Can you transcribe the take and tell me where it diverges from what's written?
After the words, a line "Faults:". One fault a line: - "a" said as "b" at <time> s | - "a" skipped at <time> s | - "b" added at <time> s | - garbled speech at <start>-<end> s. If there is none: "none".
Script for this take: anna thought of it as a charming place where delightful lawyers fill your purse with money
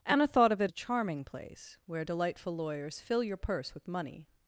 anna thought of it a charming place where delightful lawyers fill your purse with money
Faults:
- "as" skipped at 0.7 s